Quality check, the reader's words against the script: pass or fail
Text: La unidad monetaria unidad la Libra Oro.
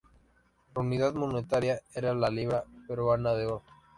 fail